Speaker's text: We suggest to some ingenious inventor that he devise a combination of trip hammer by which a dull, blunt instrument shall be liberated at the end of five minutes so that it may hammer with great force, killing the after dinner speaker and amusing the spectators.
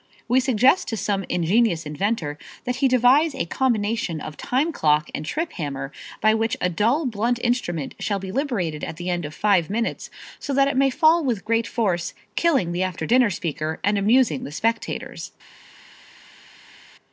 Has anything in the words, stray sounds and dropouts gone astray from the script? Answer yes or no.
yes